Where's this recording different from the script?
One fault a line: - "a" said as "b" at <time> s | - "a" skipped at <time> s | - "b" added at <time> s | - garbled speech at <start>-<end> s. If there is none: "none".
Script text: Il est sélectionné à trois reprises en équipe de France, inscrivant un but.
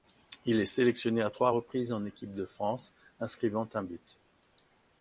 none